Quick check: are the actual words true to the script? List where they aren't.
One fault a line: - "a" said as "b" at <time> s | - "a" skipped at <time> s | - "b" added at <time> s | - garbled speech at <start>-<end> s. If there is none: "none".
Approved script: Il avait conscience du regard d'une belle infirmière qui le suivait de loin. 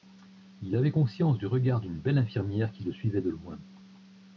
none